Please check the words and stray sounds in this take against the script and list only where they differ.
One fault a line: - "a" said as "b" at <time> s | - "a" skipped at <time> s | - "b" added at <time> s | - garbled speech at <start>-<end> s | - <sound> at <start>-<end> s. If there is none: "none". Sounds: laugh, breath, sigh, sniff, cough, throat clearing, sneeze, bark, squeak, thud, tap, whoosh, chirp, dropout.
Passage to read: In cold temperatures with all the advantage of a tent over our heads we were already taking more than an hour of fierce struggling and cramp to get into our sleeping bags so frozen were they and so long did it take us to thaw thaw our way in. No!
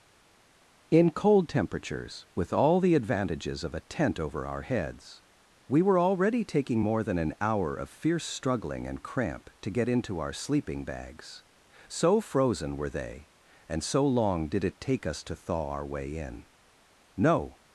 - "advantage" said as "advantages" at 2.9 s
- "thaw" skipped at 15.7 s